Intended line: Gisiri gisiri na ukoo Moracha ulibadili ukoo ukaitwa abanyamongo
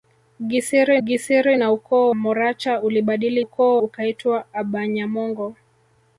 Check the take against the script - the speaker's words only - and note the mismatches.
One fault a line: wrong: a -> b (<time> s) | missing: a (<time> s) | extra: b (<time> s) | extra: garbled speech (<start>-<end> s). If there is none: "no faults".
no faults